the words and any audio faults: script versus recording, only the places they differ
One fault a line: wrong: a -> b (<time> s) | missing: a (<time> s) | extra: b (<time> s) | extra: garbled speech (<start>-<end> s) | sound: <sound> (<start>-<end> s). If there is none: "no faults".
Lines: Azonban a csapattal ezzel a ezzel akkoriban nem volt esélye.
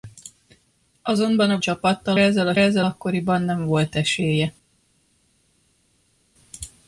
no faults